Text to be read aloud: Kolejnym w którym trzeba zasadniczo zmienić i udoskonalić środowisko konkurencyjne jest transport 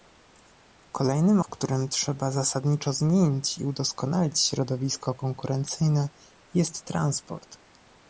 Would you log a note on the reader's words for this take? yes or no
no